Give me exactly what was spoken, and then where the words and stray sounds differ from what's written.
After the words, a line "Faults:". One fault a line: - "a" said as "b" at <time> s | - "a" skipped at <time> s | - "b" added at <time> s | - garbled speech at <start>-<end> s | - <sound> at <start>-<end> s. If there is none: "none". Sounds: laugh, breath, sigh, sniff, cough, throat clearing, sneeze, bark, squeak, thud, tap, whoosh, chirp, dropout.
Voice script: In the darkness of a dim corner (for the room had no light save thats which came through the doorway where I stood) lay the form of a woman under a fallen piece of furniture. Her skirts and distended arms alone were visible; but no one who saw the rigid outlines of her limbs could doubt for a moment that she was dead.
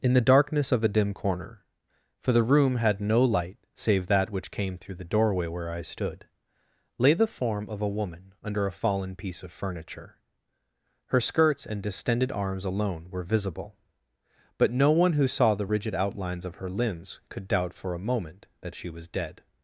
In the darkness of a dim corner (for the room had no light save that which came through the doorway where I stood) lay the form of a woman under a fallen piece of furniture. Her skirts and distended arms alone were visible; but no one who saw the rigid outlines of her limbs could doubt for a moment that she was dead.
Faults:
- "thats" said as "that" at 4.1 s